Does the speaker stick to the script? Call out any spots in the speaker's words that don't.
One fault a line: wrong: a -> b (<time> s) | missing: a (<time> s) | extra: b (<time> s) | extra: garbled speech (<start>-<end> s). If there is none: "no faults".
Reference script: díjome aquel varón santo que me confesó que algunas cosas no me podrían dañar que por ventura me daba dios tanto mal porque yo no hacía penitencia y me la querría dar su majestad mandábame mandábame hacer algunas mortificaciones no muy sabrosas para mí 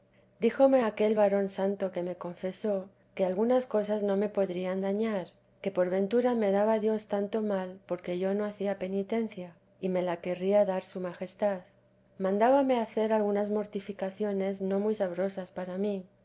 missing: mandábame (12.8 s)